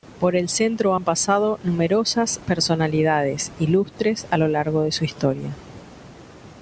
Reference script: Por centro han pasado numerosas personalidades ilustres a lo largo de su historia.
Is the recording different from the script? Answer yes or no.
yes